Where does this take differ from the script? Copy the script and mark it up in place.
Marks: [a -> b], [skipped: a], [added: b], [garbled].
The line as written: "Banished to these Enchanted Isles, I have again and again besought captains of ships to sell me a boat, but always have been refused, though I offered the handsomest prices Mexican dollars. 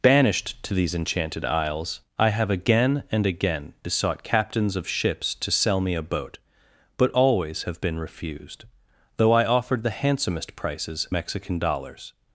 "Banished to these Enchanted Isles, I have again and again besought captains of ships to sell me a boat, but always have been refused, though I offered the handsomest prices Mexican dollars.